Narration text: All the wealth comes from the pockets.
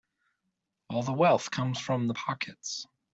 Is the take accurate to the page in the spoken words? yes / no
yes